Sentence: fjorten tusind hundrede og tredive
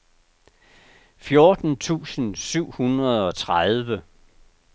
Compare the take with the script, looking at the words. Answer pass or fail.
fail